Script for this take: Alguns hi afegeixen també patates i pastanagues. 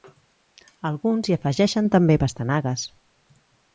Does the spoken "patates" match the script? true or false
false